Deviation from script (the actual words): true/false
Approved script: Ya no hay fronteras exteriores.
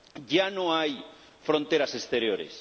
false